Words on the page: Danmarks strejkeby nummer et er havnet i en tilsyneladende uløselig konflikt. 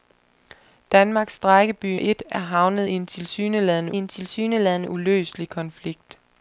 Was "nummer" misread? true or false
true